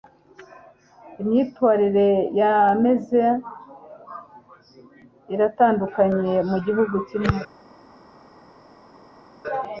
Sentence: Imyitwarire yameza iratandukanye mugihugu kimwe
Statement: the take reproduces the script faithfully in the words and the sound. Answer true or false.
true